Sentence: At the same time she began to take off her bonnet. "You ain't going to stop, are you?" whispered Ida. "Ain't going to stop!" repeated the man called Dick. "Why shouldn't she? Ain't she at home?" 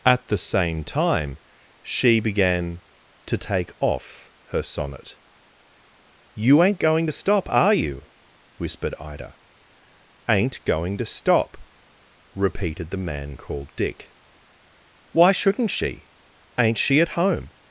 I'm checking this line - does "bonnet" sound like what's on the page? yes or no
no